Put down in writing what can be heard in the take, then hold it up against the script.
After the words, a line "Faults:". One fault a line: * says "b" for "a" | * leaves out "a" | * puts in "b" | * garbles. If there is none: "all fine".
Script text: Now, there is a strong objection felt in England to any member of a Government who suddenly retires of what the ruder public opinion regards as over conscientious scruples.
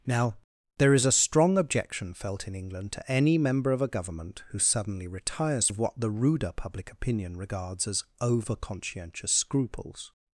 Now, there is a strong objection felt in England to any member of a Government who suddenly retires of what the ruder public opinion regards as over conscientious scruples.
Faults:
all fine